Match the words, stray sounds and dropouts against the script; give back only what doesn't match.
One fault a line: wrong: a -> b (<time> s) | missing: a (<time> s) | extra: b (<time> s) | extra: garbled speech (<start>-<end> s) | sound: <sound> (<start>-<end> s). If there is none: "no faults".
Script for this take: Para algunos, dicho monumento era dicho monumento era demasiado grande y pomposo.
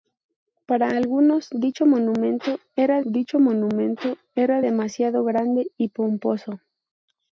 no faults